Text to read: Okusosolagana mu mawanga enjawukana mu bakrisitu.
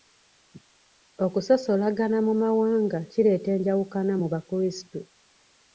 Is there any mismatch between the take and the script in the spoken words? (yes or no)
yes